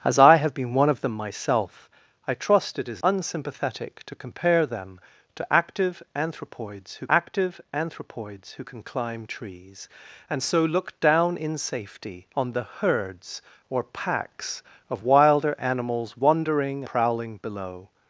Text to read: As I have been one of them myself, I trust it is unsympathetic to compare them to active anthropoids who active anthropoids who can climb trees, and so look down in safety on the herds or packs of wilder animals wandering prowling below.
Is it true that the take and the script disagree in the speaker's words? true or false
false